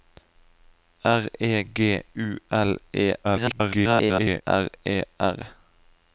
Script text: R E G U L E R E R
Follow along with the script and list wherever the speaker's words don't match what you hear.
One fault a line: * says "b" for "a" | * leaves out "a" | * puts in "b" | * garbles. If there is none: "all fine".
* garbles